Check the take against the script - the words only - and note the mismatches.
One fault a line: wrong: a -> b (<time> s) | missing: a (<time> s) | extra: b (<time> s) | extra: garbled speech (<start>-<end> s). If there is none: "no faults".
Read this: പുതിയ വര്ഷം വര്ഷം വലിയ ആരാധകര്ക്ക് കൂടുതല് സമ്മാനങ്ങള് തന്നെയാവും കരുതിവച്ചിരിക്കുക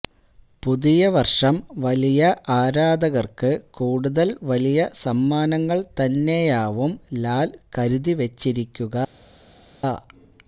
missing: വര്ഷം (1.6 s)
extra: വലിയ (4.4 s)
extra: ലാല് (7.2 s)